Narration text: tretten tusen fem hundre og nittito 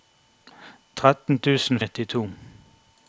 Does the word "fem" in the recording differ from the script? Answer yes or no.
yes